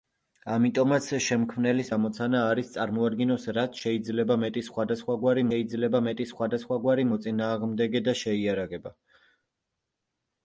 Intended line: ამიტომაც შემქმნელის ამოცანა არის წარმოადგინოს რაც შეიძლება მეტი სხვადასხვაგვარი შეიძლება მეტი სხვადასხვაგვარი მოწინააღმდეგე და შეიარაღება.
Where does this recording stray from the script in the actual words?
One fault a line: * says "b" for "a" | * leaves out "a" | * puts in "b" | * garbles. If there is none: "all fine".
all fine